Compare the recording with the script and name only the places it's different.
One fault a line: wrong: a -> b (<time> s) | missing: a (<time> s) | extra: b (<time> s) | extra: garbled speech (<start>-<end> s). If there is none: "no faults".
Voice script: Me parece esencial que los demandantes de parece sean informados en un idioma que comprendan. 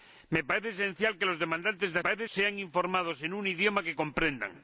no faults